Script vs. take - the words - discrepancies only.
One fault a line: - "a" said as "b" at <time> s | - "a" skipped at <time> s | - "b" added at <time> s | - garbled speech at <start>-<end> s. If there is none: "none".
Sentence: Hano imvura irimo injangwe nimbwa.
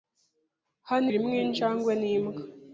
- "imvura" skipped at 1.1 s